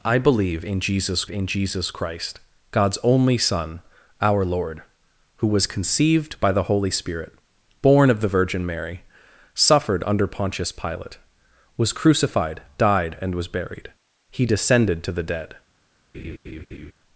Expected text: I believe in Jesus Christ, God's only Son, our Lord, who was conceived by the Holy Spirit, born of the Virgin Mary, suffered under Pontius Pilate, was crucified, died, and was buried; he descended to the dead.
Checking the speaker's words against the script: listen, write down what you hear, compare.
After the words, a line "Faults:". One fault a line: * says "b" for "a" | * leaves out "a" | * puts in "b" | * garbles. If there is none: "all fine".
I believe in Jesus in Jesus Christ, God's only Son, our Lord, who was conceived by the Holy Spirit, born of the Virgin Mary, suffered under Pontius Pilate, was crucified, died, and was buried; he descended to the dead.
Faults:
* puts in "in Jesus"